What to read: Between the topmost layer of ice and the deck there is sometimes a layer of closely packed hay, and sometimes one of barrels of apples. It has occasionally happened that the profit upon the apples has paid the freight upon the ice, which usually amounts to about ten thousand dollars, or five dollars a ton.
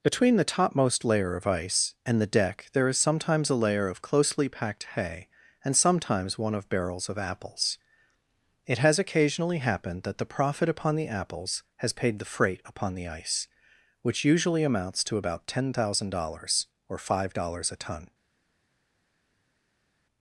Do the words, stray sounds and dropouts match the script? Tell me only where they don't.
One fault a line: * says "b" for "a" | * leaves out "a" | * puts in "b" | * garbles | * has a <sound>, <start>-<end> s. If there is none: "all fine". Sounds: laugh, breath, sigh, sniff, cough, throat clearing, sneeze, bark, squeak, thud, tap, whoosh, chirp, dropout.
all fine